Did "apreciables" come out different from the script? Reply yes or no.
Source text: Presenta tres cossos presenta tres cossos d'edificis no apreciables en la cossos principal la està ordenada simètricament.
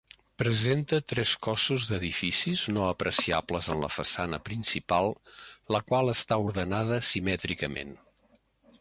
no